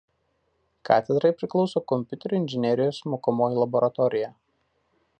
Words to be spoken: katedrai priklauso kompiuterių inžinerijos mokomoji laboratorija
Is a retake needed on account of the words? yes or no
no